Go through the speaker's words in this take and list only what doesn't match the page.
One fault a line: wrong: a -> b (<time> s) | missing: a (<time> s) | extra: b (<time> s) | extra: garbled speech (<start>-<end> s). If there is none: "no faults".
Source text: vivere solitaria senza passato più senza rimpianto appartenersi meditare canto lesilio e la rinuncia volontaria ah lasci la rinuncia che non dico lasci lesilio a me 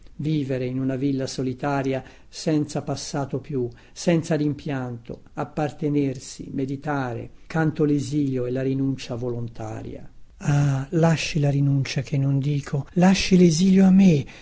extra: in una villa (0.7 s)